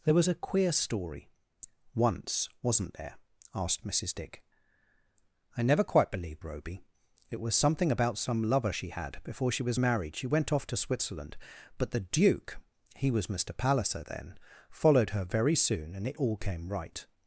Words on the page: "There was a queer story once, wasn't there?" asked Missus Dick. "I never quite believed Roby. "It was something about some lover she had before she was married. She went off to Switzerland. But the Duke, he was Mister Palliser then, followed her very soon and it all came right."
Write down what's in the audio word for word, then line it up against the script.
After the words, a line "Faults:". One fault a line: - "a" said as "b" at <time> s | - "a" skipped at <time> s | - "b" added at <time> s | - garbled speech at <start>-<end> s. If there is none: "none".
"There was a queer story once, wasn't there?" asked Missus Dick. "I never quite believed Roby. "It was something about some lover she had before she was married. She went off to Switzerland. But the Duke, he was Mister Palliser then, followed her very soon and it all came right."
Faults:
none